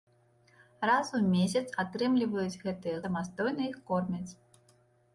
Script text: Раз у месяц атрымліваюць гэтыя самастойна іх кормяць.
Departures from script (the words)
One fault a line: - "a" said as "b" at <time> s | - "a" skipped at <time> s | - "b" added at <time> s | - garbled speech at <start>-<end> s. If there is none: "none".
none